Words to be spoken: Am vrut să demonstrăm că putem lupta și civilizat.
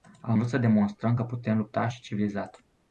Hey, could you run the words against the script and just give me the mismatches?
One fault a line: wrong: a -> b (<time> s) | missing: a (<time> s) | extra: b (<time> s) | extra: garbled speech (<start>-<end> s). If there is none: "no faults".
no faults